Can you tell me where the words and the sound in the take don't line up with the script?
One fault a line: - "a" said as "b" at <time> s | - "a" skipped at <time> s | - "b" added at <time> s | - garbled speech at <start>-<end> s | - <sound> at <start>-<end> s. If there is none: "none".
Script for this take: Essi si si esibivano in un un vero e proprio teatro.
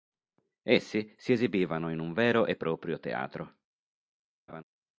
- "si" skipped at 1.3 s
- "un" skipped at 2.1 s
- laugh at 4.5-4.6 s